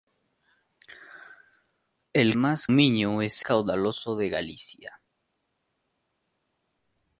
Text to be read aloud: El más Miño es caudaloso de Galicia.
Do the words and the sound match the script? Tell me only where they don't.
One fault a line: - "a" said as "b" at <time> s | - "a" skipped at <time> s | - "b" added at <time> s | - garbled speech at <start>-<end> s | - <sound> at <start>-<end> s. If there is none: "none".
none